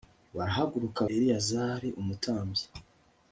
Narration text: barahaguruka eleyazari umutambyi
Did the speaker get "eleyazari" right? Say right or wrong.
right